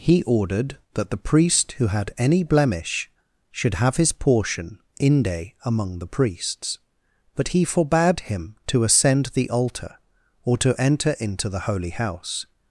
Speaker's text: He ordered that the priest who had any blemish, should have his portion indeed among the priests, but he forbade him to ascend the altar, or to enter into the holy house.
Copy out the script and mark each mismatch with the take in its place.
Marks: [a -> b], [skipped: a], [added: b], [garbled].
He ordered that the priest who had any blemish, should have his portion [indeed -> inde] among the priests, but he forbade him to ascend the altar, or to enter into the holy house.